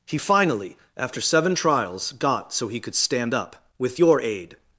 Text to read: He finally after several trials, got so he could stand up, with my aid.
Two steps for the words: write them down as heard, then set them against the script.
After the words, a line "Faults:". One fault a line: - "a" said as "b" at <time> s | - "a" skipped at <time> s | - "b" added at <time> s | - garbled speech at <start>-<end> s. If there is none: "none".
He finally after seven trials, got so he could stand up, with your aid.
Faults:
- "several" said as "seven" at 1.2 s
- "my" said as "your" at 4.0 s